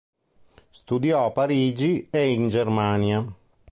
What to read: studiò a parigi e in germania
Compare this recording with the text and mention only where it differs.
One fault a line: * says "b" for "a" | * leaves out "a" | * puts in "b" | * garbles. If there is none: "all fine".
all fine